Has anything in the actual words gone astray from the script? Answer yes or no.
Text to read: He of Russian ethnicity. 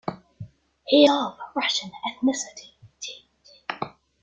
no